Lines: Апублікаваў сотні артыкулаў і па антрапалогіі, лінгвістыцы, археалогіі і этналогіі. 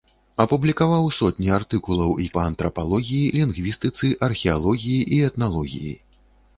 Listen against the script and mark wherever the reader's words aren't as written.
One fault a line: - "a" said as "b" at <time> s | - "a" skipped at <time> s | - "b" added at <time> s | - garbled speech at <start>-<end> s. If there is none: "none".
none